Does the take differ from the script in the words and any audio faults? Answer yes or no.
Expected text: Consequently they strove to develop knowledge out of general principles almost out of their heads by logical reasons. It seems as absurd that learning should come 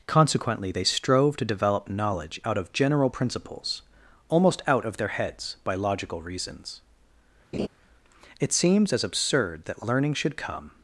yes